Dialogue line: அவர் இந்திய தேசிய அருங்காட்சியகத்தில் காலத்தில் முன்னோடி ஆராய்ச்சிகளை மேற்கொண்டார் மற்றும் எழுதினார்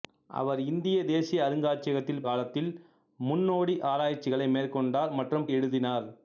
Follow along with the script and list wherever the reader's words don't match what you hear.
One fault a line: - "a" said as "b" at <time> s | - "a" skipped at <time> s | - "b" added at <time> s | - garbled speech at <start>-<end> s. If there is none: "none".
none